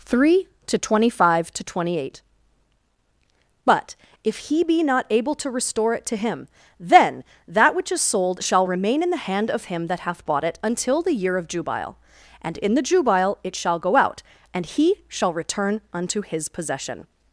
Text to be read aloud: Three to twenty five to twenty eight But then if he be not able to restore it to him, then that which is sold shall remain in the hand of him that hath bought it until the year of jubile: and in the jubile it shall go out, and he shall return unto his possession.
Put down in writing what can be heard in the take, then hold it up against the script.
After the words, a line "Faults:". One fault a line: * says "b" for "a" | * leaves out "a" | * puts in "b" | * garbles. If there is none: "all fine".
Three to twenty five to twenty eight But if he be not able to restore it to him, then that which is sold shall remain in the hand of him that hath bought it until the year of jubile: and in the jubile it shall go out, and he shall return unto his possession.
Faults:
* leaves out "then"